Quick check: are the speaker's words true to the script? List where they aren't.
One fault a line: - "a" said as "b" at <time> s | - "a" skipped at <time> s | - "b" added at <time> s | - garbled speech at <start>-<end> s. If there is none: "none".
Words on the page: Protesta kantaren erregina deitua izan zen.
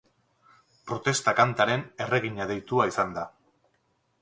- "zen" said as "da" at 3.2 s